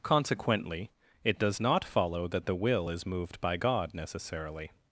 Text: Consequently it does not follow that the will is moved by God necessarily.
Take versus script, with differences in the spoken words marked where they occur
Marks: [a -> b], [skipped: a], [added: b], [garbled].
Consequently it does not follow that the will is moved by God necessarily.